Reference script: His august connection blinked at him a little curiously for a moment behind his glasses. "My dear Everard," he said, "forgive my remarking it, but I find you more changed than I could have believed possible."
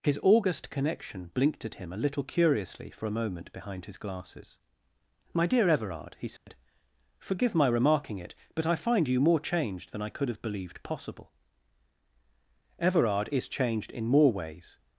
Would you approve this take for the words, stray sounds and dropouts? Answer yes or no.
no